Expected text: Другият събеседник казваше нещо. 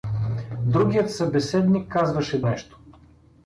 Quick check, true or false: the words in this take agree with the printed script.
true